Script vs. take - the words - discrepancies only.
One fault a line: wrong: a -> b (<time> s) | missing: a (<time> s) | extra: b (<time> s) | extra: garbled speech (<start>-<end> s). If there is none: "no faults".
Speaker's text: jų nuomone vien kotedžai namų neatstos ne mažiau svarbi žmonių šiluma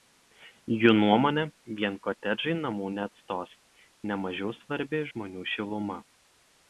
no faults